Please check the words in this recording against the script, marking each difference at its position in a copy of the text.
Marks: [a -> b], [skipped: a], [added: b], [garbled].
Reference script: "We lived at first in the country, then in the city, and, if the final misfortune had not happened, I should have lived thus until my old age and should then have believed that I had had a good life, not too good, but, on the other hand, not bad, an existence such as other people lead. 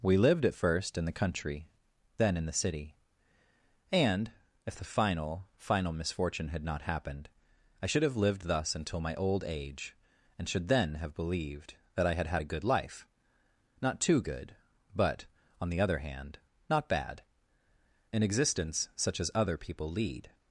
"We lived at first in the country, then in the city, and, if the final [added: final] misfortune had not happened, I should have lived thus until my old age and should then have believed that I had had a good life, not too good, but, on the other hand, not bad, an existence such as other people lead.